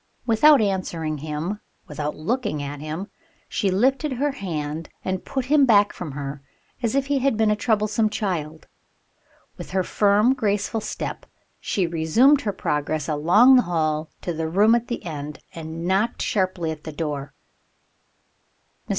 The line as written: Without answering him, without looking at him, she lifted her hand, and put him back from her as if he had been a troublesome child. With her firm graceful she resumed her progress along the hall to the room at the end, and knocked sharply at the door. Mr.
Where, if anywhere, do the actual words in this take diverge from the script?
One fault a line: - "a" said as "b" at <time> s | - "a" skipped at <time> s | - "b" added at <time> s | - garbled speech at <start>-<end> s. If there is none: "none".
- "step" added at 10.8 s